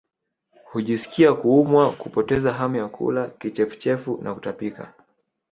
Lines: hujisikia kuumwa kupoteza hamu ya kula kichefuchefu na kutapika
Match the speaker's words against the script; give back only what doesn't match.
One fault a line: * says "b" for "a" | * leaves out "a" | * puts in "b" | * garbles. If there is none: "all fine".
all fine